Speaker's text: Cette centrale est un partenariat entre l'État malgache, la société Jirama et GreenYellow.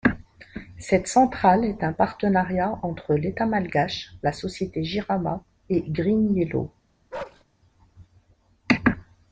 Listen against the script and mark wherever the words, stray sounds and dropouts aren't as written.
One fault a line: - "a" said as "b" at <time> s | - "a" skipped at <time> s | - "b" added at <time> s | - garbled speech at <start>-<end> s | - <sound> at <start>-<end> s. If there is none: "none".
- bark at 7.1-7.4 s